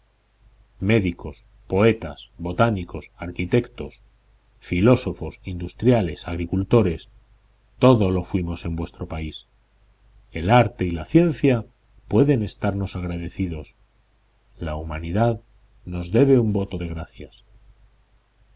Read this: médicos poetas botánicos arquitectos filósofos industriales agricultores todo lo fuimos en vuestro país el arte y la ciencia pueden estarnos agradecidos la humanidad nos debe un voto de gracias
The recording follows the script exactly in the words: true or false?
true